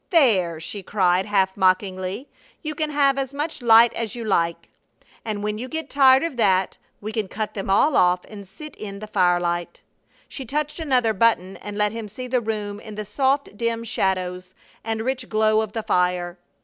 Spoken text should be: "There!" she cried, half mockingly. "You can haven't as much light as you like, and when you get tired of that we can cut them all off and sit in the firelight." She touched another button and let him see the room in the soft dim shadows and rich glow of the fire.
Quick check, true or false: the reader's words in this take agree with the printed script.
false